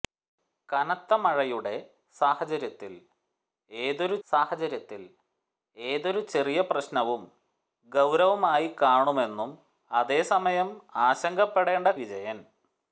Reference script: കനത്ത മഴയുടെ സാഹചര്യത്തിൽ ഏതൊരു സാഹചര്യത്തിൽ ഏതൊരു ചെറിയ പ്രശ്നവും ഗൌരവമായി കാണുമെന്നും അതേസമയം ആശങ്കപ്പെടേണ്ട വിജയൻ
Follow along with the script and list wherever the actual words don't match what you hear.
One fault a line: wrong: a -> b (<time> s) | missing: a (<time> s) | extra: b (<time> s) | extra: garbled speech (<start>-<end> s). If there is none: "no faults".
no faults